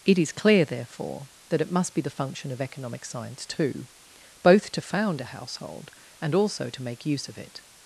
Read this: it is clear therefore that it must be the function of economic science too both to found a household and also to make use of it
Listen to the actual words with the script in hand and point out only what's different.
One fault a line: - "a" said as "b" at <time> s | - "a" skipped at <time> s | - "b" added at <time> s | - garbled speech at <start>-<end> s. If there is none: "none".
none